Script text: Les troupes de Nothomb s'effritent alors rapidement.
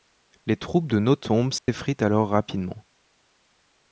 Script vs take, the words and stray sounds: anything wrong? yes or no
yes